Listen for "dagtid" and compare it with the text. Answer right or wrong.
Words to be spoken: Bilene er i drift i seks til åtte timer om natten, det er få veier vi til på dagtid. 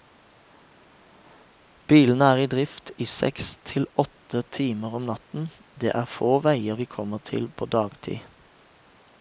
right